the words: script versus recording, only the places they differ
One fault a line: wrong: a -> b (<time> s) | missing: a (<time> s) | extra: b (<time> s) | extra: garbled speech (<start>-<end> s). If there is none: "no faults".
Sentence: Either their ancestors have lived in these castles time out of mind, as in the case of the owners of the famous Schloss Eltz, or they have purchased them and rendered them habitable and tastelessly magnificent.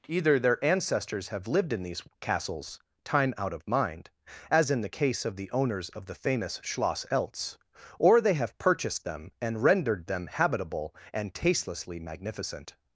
no faults